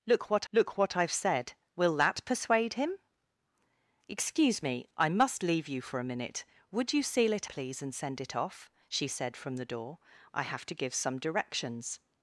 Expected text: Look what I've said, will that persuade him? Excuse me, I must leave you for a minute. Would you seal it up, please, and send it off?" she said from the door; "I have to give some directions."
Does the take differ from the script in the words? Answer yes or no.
yes